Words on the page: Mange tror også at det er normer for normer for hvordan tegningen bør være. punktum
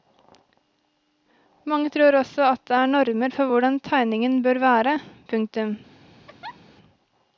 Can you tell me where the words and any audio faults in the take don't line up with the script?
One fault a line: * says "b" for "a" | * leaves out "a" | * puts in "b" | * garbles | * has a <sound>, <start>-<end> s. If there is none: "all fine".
* leaves out "normer for"
* has a laugh, 6.3-6.6 s